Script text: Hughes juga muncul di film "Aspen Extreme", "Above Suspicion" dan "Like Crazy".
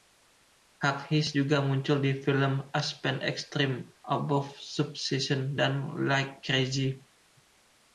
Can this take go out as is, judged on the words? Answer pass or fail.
pass